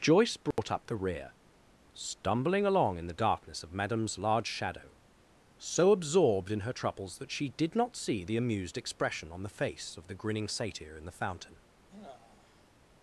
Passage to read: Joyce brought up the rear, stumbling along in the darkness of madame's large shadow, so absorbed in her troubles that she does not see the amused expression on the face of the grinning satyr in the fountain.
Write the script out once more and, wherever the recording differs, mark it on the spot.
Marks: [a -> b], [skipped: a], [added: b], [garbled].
Joyce brought up the rear, stumbling along in the darkness of madame's large shadow, so absorbed in her troubles that she [does -> did] not see the amused expression on the face of the grinning satyr in the fountain.